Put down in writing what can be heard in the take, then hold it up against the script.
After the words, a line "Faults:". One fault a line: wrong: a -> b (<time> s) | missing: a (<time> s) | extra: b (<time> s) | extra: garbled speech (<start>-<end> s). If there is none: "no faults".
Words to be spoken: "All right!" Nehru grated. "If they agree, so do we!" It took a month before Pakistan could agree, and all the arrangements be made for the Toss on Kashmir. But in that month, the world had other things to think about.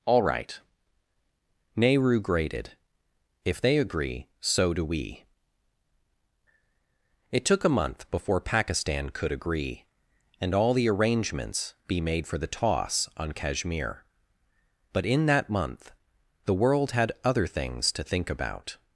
"All right!" Nehru grated. "If they agree, so do we!" It took a month before Pakistan could agree, and all the arrangements be made for the Toss on Kashmir. But in that month, the world had other things to think about.
Faults:
no faults